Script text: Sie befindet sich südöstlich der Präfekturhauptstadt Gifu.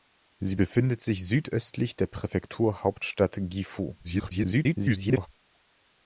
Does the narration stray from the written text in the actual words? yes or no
yes